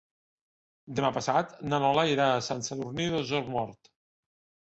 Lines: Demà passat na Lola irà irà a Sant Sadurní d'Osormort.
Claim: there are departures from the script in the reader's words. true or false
true